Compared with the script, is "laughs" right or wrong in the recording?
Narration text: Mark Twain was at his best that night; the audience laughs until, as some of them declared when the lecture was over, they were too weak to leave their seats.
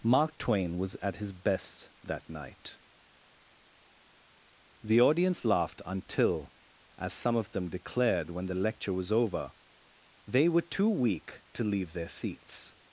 wrong